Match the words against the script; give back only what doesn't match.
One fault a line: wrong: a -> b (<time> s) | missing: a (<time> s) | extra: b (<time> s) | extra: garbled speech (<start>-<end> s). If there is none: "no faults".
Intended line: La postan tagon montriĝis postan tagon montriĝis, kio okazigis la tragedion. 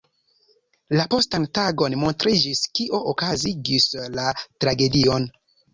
missing: postan tagon montriĝis (2.6 s)